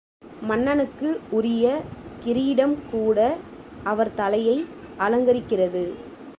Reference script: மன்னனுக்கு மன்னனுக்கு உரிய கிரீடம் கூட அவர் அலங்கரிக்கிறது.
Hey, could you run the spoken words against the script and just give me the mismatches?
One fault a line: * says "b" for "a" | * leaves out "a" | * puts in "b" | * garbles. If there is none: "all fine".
* leaves out "மன்னனுக்கு"
* puts in "தலையை"